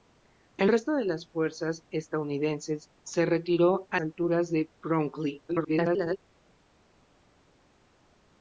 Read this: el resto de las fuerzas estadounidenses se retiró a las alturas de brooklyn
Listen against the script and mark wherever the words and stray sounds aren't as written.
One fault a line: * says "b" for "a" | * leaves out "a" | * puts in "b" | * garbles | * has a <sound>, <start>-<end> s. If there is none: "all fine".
* leaves out "las"
* garbles